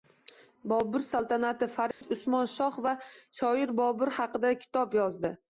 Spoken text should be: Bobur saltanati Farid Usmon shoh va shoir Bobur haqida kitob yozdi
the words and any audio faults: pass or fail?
fail